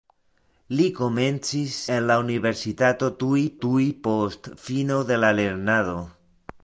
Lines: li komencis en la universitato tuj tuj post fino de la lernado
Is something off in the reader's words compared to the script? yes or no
no